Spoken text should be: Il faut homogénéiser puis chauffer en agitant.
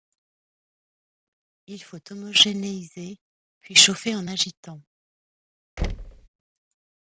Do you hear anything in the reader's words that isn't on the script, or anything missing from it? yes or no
no